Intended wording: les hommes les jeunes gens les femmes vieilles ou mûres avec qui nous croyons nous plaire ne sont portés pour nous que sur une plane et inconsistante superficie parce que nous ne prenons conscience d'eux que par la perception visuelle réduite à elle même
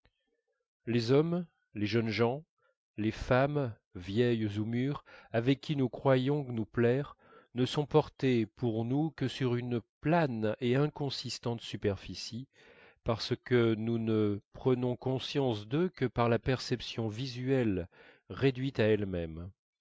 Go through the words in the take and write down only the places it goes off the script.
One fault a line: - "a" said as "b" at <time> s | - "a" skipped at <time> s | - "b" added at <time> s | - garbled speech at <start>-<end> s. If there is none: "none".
none